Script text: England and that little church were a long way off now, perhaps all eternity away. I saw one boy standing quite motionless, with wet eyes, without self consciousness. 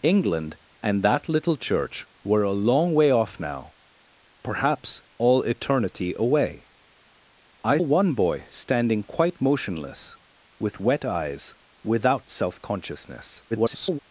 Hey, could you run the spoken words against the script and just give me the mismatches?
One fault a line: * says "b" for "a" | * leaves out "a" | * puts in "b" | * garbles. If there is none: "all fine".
* leaves out "saw"
* garbles